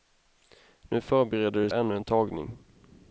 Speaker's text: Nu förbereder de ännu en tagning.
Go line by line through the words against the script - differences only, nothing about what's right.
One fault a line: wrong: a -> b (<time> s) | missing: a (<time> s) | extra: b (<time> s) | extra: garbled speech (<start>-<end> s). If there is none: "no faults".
no faults